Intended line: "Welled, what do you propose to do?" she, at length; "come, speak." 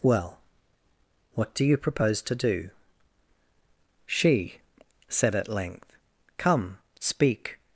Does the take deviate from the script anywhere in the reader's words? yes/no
yes